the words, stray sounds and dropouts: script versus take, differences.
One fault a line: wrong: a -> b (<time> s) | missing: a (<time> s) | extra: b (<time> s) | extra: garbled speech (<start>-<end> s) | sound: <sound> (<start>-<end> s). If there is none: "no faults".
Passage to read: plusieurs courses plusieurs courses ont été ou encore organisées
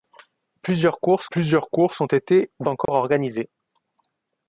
sound: dropout (2.9-2.9 s)